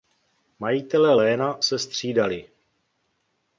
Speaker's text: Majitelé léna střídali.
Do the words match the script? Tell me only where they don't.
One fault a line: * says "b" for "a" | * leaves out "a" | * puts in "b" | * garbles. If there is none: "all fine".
* puts in "se"